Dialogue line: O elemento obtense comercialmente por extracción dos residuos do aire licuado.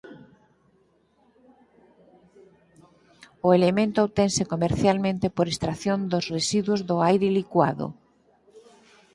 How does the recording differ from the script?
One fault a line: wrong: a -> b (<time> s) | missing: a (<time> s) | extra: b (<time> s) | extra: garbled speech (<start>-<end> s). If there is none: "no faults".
no faults